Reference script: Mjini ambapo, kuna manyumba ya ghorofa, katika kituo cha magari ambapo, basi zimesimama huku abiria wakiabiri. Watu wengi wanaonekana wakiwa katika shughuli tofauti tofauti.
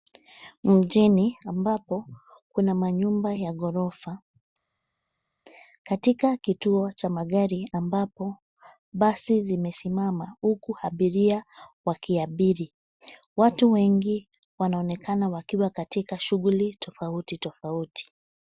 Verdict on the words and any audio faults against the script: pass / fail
pass